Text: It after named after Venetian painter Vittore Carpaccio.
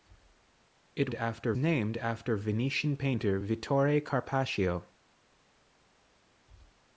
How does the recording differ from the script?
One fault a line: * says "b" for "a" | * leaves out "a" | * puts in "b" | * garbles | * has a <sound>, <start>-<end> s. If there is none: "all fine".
all fine